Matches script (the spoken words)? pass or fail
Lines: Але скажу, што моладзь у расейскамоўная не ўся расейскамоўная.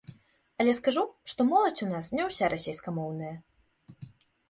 fail